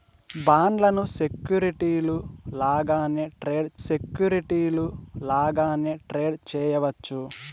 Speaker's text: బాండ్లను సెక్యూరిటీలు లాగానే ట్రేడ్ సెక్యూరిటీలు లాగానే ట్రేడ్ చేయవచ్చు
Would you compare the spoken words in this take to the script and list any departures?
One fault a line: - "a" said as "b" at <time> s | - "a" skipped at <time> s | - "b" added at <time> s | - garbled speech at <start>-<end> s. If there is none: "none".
none